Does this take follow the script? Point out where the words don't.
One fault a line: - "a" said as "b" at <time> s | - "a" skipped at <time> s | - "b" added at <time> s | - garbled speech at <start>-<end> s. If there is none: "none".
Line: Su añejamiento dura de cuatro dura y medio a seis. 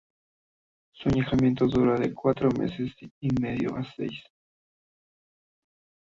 - "dura" said as "meses" at 2.5 s